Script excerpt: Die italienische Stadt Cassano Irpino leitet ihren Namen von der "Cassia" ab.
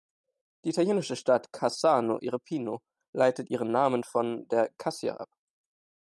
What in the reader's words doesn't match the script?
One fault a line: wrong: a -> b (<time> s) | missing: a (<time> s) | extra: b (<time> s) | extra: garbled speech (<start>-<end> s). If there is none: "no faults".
no faults